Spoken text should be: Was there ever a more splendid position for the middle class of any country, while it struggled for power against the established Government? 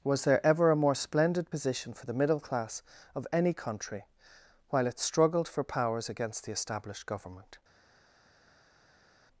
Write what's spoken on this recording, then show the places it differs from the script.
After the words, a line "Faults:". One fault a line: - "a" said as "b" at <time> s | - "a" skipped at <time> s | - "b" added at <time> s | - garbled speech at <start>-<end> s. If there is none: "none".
Was there ever a more splendid position for the middle class of any country, while it struggled for powers against the established Government?
Faults:
- "power" said as "powers" at 5.6 s